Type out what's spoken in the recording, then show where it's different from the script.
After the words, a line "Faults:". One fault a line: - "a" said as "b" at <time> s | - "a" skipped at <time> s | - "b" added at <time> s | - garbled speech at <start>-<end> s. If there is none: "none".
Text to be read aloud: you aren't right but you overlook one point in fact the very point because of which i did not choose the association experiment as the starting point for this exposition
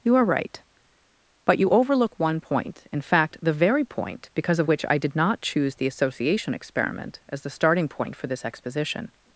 you are right but you overlook one point in fact the very point because of which i did not choose the association experiment as the starting point for this exposition
Faults:
- "aren't" said as "are" at 0.1 s